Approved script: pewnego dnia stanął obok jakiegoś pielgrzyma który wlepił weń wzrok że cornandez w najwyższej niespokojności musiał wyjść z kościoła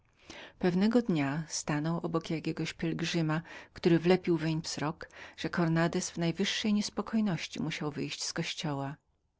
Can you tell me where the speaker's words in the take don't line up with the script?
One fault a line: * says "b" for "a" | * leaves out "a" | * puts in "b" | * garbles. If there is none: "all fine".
all fine